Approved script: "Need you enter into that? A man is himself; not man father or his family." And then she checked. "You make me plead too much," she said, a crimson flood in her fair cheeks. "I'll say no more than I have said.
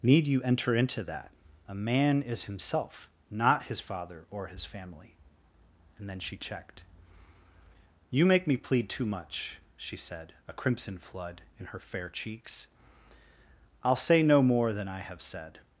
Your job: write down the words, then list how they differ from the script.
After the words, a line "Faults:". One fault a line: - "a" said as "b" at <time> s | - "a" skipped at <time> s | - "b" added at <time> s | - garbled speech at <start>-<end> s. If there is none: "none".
"Need you enter into that? A man is himself; not his father or his family." And then she checked. "You make me plead too much," she said, a crimson flood in her fair cheeks. "I'll say no more than I have said.
Faults:
- "man" said as "his" at 3.6 s